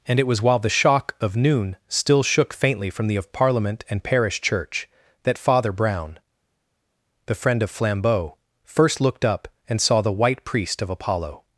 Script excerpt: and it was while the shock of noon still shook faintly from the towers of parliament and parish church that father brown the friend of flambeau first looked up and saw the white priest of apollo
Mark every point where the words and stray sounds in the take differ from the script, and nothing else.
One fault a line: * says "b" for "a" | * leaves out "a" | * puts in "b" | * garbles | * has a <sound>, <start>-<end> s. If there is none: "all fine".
* leaves out "towers"